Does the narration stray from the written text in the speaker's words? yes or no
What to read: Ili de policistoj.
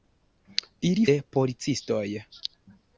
no